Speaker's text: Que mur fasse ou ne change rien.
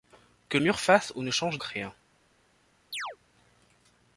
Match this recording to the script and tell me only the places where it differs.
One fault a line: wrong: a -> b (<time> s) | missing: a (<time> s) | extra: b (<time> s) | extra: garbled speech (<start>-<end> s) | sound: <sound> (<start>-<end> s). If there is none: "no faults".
sound: chirp (2.9-3.2 s)